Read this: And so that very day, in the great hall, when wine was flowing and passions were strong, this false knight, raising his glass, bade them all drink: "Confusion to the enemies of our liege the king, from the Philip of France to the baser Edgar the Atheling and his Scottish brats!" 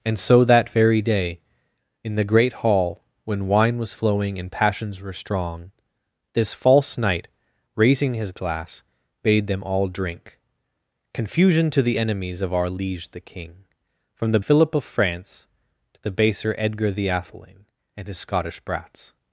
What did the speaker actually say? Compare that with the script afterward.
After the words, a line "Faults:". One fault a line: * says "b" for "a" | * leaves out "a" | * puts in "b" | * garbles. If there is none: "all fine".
And so that very day, in the great hall, when wine was flowing and passions were strong, this false knight, raising his glass, bade them all drink: "Confusion to the enemies of our liege the king, from the Philip of France to the baser Edgar the Atheling and his Scottish brats!"
Faults:
all fine